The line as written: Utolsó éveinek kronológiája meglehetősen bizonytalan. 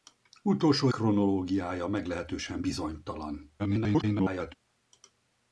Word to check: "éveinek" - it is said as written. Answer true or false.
false